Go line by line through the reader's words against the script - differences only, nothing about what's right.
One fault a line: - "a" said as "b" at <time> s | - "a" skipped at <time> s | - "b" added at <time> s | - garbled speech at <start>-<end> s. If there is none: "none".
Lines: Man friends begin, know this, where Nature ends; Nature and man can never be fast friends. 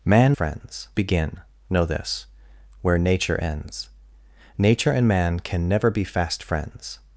none